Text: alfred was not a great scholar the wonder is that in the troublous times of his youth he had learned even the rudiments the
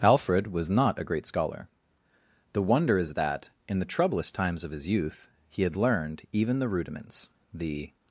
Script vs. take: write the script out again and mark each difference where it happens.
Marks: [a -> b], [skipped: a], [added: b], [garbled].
alfred was not a great scholar the wonder is that in the troublous times of his youth he had learned even the rudiments the